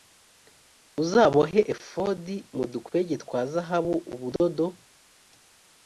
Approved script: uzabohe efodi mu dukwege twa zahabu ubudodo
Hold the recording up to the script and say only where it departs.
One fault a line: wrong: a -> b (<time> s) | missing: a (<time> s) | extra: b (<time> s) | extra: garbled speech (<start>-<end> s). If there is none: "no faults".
no faults